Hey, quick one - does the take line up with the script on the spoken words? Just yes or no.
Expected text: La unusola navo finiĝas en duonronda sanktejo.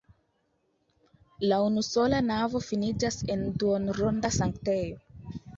yes